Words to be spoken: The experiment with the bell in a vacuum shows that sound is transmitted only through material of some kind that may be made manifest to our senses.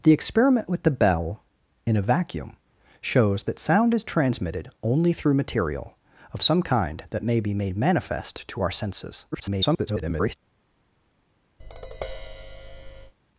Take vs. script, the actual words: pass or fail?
fail